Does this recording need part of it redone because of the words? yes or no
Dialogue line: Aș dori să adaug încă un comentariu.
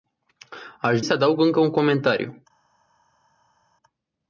yes